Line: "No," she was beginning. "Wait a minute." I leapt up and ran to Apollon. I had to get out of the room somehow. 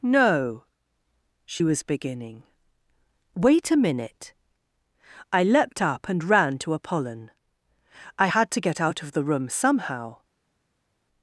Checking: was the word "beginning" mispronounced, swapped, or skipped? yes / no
no